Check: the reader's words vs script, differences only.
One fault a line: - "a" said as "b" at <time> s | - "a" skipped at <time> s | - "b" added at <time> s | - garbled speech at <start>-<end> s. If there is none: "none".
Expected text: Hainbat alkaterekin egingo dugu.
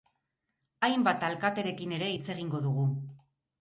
- "ere hitz" added at 2.0 s